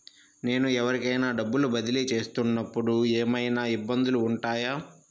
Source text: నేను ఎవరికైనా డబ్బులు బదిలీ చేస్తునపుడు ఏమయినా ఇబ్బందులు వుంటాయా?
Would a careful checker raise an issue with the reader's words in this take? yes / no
no